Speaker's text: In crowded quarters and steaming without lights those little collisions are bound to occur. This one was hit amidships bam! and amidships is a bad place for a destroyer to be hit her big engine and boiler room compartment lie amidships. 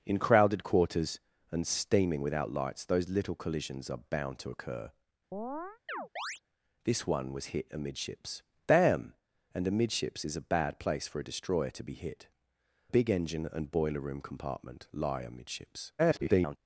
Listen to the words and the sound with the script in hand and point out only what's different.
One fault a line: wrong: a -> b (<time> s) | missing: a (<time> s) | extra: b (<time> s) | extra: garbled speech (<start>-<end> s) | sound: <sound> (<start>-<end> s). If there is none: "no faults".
sound: chirp (5.3-6.4 s)
missing: her (12.3 s)
extra: garbled speech (16.0-16.6 s)